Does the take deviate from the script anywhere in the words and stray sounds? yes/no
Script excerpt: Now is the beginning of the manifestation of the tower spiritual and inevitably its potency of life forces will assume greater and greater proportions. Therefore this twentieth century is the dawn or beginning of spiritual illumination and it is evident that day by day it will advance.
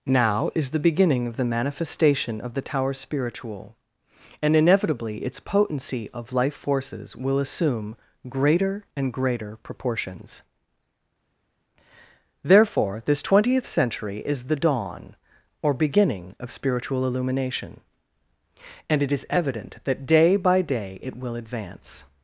no